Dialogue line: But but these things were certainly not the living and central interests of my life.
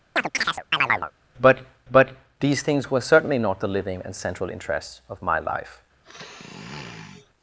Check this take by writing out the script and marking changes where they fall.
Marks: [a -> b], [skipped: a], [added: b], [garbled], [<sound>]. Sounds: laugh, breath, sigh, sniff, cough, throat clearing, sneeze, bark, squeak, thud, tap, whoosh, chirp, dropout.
[chirp] But but these things were certainly not the living and central interests of my life. [sniff]